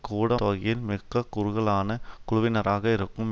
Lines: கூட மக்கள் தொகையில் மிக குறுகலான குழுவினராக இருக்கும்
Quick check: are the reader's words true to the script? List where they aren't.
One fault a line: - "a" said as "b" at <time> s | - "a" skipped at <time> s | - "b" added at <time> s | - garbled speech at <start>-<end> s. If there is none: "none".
- "மக்கள்" skipped at 0.4 s